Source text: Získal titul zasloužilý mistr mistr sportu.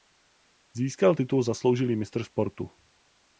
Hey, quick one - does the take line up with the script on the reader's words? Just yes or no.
no